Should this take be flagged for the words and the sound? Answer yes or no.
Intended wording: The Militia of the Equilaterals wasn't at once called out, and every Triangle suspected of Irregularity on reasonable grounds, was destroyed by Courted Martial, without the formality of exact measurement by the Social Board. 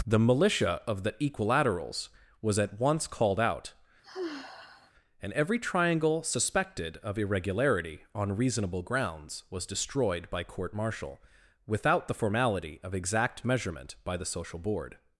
yes